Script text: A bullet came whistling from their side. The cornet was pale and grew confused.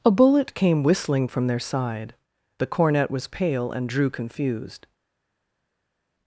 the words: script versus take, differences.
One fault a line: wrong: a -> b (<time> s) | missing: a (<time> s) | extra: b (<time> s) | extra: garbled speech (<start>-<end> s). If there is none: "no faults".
wrong: grew -> drew (3.9 s)